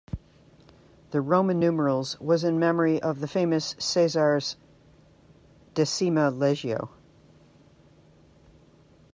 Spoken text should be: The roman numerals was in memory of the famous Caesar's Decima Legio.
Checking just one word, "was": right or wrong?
right